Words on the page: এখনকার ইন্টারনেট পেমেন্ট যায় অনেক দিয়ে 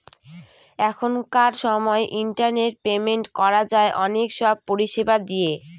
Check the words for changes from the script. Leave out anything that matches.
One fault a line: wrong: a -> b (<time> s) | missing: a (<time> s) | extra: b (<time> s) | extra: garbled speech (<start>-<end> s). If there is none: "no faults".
extra: সময় (1.6 s)
extra: করা (3.4 s)
extra: সব পরিষেবা (4.4 s)